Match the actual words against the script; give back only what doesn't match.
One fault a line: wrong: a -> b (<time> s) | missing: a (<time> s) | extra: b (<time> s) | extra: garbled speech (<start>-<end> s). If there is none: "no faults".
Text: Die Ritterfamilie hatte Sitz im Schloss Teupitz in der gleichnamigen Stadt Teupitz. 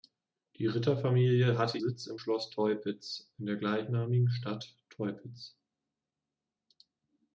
no faults